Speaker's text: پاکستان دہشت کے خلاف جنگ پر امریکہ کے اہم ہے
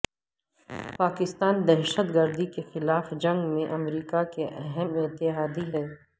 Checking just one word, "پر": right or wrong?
wrong